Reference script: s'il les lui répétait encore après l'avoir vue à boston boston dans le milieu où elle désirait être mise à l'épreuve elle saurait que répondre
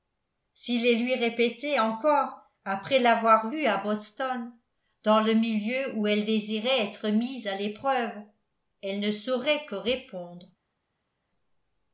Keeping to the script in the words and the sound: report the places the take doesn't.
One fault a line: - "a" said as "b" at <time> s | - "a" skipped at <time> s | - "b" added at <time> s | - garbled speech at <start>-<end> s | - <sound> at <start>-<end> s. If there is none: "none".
- "boston" skipped at 4.5 s
- "ne" added at 9.0 s